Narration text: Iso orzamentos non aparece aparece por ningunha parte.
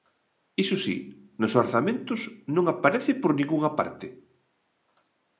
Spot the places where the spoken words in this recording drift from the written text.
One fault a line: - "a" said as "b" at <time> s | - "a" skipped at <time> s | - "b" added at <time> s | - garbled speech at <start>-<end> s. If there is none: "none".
- "si nos" added at 0.8 s
- "aparece" skipped at 3.1 s